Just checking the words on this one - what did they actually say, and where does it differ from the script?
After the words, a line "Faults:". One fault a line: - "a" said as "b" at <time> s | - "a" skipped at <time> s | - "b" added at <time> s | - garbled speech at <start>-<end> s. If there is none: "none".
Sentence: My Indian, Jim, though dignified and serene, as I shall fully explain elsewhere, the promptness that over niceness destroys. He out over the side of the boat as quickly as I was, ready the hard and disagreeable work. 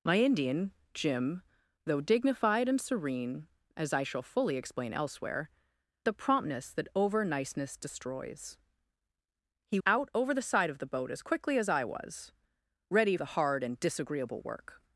My Indian, Jim, though dignified and serene, as I shall fully explain elsewhere, the promptness that over niceness destroys. He out over the side of the boat as quickly as I was, ready the hard and disagreeable work.
Faults:
none